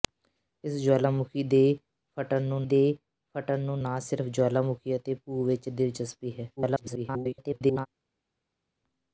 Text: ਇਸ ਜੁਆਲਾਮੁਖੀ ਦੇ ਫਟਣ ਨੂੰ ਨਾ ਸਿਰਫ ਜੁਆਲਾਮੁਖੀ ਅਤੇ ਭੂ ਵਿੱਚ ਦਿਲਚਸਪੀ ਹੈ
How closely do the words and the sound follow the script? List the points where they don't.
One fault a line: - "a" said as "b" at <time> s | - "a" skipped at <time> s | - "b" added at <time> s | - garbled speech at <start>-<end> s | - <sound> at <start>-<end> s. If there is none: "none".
- "ਦੇ ਫਟਣ ਨੂੰ" added at 2.6 s
- garbled speech at 6.6-7.9 s